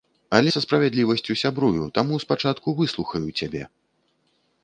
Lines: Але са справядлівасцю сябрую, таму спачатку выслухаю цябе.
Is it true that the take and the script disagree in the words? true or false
false